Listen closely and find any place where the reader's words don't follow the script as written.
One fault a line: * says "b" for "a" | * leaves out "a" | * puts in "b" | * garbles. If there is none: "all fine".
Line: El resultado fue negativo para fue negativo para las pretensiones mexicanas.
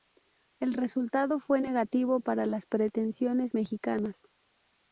* leaves out "fue negativo para"